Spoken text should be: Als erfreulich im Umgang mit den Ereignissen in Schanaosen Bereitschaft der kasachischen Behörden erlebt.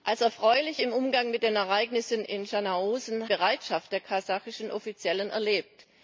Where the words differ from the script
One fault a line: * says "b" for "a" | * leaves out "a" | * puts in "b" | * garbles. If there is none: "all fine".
all fine